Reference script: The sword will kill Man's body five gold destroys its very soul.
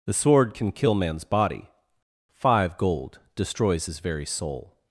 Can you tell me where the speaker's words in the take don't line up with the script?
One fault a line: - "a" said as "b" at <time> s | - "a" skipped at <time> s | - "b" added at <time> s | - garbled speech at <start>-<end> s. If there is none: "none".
- "will" said as "can" at 0.5 s
- "its" said as "his" at 3.8 s